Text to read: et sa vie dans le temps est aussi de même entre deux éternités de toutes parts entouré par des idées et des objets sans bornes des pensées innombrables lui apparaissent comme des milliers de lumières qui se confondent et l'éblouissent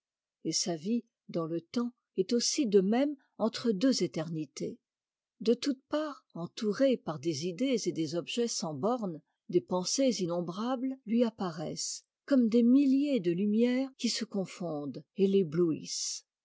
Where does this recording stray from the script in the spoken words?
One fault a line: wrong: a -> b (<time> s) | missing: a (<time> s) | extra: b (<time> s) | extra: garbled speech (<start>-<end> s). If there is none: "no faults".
no faults